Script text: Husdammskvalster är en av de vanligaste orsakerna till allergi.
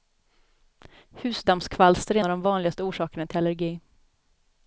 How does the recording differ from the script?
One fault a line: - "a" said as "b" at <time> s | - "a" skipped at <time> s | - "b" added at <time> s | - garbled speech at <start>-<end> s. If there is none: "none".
- "en" skipped at 2.2 s